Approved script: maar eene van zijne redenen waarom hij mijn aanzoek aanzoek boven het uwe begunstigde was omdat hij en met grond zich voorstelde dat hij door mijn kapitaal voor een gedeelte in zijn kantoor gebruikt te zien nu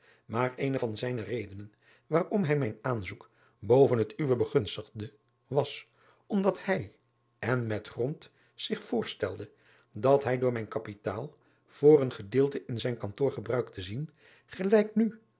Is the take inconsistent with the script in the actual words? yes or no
yes